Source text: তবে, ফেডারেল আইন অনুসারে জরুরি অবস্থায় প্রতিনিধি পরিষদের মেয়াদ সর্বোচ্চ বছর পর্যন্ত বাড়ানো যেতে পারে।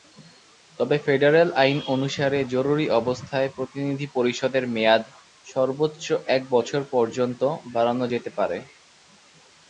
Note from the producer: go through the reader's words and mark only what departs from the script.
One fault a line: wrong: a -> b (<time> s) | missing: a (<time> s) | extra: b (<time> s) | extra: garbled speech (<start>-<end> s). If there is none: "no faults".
extra: এক (6.3 s)